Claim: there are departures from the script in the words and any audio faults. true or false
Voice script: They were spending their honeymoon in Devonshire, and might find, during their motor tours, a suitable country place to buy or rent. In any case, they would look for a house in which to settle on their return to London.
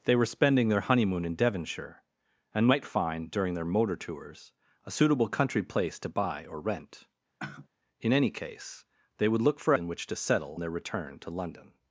true